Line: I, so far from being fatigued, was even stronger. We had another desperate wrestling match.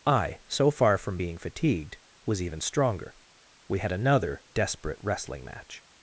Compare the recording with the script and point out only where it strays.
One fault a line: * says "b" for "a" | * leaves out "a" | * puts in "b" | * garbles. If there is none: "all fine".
all fine